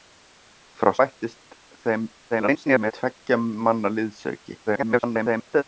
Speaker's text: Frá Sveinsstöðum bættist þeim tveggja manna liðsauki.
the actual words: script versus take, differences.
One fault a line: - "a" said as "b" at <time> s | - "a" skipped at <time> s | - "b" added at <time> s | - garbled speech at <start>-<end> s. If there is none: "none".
- "Sveinsstöðum" skipped at 0.9 s
- garbled speech at 2.3-2.9 s
- garbled speech at 4.7-5.6 s